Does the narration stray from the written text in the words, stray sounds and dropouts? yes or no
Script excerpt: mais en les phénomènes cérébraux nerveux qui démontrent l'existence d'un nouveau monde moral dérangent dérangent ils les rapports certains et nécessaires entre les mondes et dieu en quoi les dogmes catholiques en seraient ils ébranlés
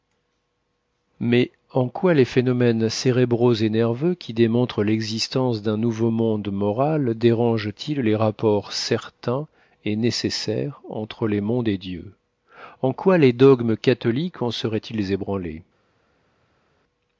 yes